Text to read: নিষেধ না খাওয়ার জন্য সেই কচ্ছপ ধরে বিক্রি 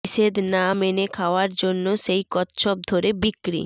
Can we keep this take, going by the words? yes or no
no